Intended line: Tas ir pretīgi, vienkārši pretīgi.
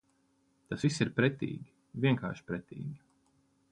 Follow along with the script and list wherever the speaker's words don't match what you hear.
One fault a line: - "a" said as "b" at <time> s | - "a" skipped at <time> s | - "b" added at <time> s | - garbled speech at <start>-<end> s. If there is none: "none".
- "viss" added at 0.8 s